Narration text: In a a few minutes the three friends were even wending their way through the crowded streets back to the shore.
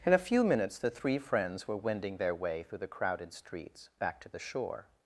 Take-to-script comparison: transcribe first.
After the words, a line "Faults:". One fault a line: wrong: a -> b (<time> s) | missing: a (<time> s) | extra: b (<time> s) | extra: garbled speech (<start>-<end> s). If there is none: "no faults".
In a few minutes the three friends were wending their way through the crowded streets back to the shore.
Faults:
missing: a (0.3 s)
missing: even (1.8 s)